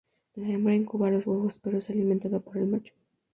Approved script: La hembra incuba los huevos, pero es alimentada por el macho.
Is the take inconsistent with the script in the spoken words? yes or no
no